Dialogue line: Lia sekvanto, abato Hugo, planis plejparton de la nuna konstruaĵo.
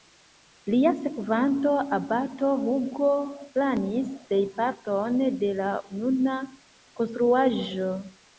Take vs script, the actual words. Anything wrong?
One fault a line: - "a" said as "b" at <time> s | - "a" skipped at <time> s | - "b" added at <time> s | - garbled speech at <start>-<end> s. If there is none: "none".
none